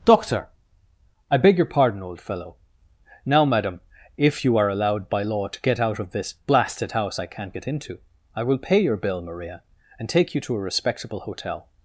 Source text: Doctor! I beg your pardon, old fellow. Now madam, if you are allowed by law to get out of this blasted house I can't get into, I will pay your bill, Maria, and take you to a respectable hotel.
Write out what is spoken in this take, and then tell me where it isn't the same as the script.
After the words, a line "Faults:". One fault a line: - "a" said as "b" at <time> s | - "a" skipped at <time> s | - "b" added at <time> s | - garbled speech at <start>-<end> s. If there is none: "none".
Doctor! I beg your pardon, old fellow. Now madam, if you are allowed by law to get out of this blasted house I can't get into, I will pay your bill, Maria, and take you to a respectable hotel.
Faults:
none